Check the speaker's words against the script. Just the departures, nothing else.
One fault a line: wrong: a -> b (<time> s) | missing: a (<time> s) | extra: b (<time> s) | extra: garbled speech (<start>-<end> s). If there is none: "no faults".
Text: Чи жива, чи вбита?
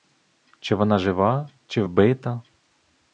extra: вона (0.8 s)